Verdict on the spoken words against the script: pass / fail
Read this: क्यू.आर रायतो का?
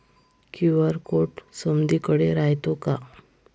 fail